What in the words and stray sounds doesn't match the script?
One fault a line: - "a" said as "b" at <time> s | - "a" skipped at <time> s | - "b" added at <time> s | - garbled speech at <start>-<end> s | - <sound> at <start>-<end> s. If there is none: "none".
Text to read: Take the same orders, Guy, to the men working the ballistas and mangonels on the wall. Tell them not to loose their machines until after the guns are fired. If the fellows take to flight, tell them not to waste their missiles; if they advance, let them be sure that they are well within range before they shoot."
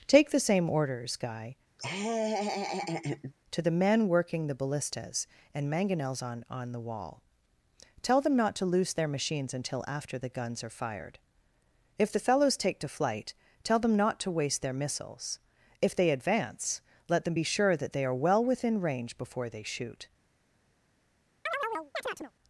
- laugh at 1.8-3.3 s
- "on" added at 6.5 s
- chirp at 21.5-22.3 s